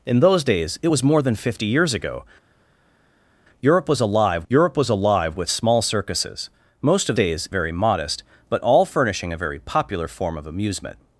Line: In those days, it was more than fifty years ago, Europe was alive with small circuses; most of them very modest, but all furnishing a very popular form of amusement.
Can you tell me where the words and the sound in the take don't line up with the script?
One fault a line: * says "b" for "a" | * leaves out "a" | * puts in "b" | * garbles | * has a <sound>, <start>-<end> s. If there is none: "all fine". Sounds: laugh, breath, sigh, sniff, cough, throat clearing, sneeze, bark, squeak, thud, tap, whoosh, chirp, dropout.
* puts in "Europe was alive"
* says "days" for "them"